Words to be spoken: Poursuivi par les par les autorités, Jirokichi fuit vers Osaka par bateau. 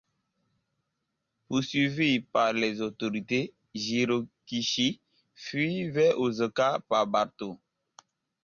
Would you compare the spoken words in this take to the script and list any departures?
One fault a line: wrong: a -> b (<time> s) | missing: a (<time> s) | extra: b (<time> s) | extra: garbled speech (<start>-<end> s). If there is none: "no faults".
missing: par les (2.8 s)